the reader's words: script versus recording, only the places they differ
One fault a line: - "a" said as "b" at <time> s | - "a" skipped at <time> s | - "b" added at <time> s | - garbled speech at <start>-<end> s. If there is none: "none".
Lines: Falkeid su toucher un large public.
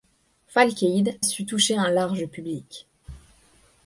none